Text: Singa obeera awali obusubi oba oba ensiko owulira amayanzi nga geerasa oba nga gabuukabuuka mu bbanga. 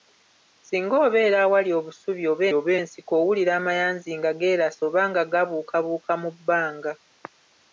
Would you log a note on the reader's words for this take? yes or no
no